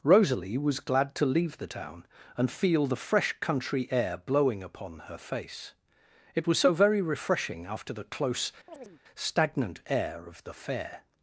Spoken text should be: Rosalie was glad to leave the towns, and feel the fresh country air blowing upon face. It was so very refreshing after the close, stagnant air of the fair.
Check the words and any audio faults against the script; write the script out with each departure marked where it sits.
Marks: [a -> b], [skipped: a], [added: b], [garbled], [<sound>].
Rosalie was glad to leave the [towns, -> town] and feel the fresh country air blowing upon [added: her] face. It was so very refreshing after the close, [chirp] stagnant air of the fair.